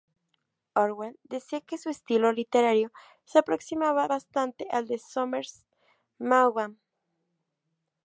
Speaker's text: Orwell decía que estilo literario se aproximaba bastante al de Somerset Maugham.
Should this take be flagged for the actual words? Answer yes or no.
yes